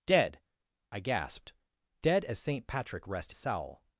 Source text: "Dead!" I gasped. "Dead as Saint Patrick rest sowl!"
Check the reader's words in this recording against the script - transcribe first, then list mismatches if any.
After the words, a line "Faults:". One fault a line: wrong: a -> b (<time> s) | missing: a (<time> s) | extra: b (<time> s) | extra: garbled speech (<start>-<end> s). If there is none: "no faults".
"Dead!" I gasped. "Dead as Saint Patrick rest sowl!"
Faults:
no faults